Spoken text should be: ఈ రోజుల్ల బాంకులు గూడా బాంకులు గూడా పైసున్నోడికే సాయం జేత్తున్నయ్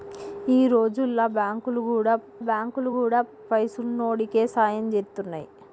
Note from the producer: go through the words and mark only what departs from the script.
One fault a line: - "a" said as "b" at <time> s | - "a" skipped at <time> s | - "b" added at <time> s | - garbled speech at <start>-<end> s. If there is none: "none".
none